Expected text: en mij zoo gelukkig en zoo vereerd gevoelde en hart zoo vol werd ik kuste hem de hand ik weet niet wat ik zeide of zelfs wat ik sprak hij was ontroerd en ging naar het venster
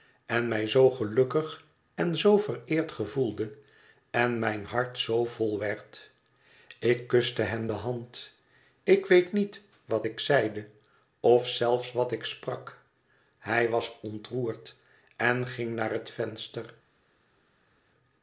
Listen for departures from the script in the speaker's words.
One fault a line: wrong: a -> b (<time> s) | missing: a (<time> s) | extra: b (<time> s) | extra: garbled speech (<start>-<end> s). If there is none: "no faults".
extra: mijn (4.4 s)